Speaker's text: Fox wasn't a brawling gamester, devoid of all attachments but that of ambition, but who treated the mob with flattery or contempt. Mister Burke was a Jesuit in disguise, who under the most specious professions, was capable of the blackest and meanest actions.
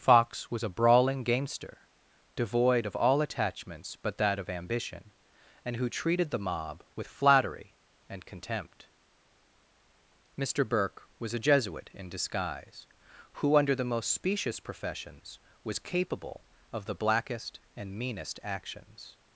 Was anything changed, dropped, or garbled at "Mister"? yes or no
no